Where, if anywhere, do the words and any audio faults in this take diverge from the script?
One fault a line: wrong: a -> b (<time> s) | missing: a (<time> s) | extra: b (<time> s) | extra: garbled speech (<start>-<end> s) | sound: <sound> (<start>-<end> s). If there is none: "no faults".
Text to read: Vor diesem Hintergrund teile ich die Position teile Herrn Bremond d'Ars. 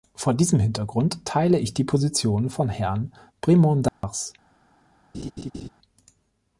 wrong: teile -> von (2.5 s)
sound: dropout (3.9-4.0 s)
sound: laugh (5.1-5.7 s)